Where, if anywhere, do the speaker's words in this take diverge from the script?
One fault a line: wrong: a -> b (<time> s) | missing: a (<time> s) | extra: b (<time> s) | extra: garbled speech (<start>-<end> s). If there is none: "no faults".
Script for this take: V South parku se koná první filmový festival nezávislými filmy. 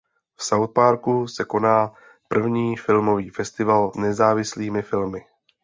no faults